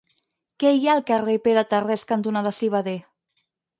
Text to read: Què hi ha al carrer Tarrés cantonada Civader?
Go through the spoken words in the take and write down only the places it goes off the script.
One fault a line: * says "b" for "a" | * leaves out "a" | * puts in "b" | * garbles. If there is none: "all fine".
* puts in "Pere"